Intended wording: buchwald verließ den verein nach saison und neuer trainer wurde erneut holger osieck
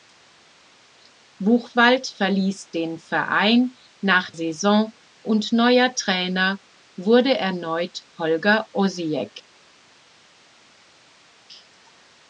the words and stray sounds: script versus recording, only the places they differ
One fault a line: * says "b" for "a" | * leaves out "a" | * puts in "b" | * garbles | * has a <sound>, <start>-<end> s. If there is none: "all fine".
all fine